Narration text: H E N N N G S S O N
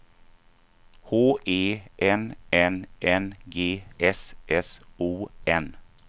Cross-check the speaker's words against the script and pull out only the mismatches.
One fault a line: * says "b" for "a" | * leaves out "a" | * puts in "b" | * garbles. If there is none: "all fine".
all fine